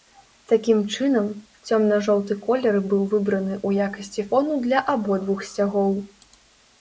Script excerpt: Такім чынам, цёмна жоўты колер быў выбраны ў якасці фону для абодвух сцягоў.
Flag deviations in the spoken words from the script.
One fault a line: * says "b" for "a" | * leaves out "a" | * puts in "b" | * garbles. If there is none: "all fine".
all fine